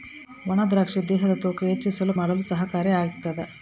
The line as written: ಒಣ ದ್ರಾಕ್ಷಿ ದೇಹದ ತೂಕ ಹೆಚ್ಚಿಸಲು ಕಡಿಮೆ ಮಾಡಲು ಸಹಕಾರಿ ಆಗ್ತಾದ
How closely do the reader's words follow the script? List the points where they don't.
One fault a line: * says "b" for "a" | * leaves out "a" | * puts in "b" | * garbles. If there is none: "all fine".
* leaves out "ಕಡಿಮೆ"